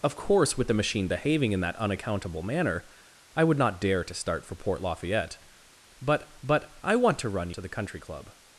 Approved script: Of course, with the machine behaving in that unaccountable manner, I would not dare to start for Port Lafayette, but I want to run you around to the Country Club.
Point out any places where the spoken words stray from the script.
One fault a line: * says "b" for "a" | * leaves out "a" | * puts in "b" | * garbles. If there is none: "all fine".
* puts in "but"
* leaves out "you around"